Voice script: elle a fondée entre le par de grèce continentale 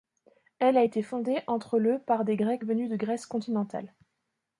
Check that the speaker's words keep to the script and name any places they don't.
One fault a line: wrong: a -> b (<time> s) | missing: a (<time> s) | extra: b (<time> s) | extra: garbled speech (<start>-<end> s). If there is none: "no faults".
extra: été (0.8 s)
extra: des grecs venus (2.2 s)